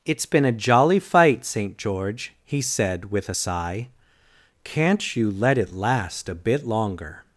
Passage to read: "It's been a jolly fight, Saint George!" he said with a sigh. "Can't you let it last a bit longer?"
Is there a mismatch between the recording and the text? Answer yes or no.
no